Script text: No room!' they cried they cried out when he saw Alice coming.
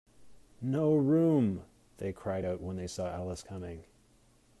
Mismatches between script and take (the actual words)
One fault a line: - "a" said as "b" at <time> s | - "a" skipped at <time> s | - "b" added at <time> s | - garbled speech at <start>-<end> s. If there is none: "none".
- "they cried" skipped at 2.5 s
- "he" said as "they" at 2.8 s